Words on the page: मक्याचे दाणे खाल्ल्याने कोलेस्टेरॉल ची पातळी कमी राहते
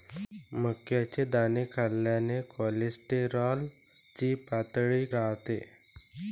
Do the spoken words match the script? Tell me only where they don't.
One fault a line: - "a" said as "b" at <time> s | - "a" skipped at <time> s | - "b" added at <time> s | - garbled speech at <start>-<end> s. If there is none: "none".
- "कमी" skipped at 5.0 s